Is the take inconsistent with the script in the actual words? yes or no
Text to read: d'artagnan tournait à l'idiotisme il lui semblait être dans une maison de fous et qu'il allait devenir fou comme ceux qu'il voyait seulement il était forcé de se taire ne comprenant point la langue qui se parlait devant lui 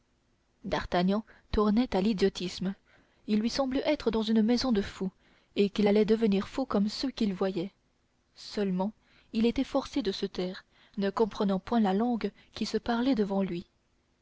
no